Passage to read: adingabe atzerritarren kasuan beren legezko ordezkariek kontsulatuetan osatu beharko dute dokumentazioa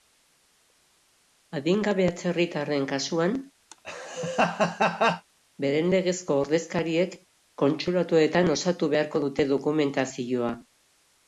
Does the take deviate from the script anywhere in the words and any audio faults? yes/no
yes